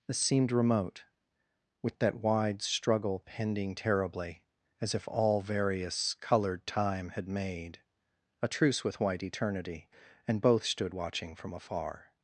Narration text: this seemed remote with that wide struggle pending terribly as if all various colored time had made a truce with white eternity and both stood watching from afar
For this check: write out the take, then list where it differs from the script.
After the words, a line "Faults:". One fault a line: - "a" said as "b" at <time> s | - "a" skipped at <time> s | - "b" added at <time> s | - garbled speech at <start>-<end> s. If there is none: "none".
this seemed remote with that wide struggle pending terribly as if all various colored time had made a truce with white eternity and both stood watching from afar
Faults:
none